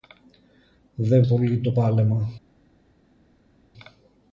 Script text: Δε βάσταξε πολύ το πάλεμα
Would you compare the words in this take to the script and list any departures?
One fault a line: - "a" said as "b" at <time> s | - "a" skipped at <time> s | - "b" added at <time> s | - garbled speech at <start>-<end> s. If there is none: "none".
- "βάσταξε" skipped at 1.2 s